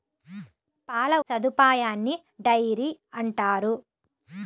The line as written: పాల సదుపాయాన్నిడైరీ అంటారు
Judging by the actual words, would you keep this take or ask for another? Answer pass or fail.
pass